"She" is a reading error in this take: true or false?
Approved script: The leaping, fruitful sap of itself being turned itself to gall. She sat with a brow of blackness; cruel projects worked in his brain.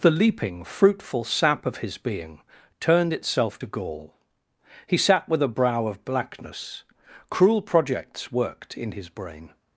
true